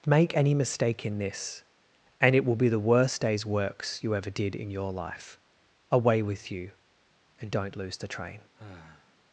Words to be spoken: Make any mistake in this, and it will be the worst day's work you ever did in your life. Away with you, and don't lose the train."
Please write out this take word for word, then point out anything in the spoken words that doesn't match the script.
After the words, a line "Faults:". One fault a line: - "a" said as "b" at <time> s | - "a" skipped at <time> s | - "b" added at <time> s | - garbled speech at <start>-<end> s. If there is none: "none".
Make any mistake in this, and it will be the worst day's works you ever did in your life. Away with you, and don't lose the train."
Faults:
- "work" said as "works" at 3.4 s